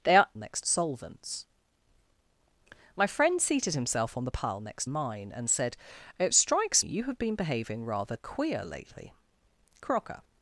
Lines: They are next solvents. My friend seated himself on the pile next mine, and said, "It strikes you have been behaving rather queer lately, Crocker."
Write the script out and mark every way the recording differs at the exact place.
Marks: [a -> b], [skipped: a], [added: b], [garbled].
They are next solvents. My friend seated himself on the pile next mine, and said, "It strikes you have been behaving rather queer lately, Crocker."